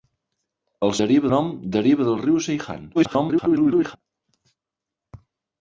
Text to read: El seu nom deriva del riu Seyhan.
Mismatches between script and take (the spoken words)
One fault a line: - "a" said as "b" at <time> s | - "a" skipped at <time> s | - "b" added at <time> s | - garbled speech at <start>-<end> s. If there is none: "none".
- "seu" said as "deriva" at 1.0 s
- garbled speech at 2.9-4.0 s